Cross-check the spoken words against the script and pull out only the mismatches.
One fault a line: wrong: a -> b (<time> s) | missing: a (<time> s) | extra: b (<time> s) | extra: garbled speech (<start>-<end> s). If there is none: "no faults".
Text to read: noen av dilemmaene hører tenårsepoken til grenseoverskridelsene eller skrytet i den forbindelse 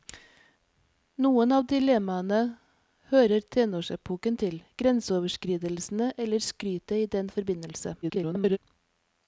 extra: garbled speech (8.0-8.6 s)